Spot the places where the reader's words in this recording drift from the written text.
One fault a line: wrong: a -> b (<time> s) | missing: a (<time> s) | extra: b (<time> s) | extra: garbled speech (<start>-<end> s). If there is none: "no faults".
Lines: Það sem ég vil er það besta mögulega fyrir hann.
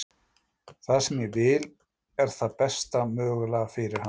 no faults